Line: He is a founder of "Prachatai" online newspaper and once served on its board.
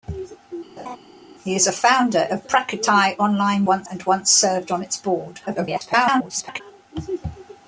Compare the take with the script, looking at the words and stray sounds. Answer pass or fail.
fail